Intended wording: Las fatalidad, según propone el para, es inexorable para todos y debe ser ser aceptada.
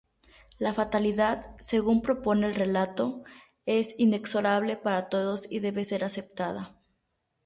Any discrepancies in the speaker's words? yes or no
yes